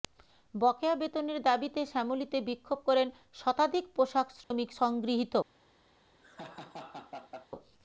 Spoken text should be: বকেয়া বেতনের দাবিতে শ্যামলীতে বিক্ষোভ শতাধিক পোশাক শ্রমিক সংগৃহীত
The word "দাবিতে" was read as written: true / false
true